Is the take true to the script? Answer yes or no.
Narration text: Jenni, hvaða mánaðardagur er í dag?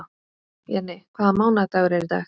yes